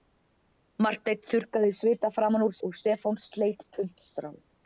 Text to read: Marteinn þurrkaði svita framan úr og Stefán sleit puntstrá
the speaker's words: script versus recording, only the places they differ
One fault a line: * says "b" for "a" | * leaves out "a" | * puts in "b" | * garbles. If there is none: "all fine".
all fine